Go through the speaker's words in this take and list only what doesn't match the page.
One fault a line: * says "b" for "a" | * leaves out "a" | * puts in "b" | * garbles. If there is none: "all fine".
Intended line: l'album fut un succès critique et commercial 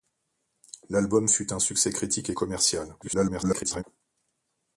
* garbles